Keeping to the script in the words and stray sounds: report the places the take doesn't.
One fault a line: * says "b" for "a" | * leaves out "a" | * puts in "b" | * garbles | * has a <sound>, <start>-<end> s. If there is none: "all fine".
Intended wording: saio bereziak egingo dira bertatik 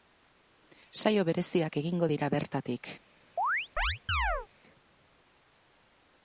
* has a chirp, 3.4-4.5 s